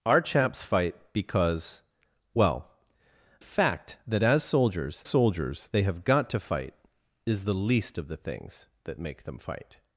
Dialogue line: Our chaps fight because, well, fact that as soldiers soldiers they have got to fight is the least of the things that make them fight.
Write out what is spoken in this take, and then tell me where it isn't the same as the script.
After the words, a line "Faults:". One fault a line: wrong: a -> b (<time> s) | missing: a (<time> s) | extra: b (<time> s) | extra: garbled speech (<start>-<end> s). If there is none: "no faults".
Our chaps fight because, well, fact that as soldiers soldiers they have got to fight is the least of the things that make them fight.
Faults:
no faults